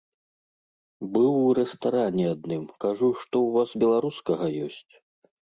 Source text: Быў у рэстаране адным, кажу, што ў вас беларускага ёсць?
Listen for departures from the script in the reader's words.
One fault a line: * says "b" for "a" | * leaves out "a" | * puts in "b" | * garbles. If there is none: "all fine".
all fine